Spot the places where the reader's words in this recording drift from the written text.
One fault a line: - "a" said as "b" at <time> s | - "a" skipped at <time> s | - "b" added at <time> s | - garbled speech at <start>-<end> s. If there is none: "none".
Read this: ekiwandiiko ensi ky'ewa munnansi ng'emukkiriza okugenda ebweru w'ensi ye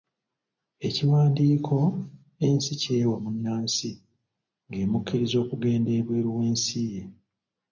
none